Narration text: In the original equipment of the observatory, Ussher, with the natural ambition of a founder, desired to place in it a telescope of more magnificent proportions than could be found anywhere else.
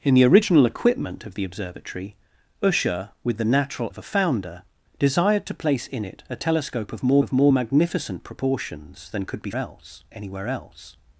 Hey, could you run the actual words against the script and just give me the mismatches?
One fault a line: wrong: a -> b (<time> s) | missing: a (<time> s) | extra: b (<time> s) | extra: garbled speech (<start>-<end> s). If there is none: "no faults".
missing: ambition (3.9 s)
extra: of more (7.2 s)
wrong: found -> else (9.5 s)